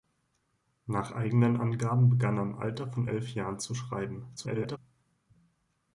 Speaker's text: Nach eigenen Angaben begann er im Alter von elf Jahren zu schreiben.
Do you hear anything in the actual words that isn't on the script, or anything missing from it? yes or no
yes